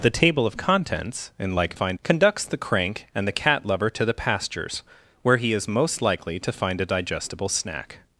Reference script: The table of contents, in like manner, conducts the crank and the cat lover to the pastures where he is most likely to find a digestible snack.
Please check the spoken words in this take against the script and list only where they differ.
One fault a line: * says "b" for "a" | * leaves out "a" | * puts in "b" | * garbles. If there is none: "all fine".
* says "find" for "manner"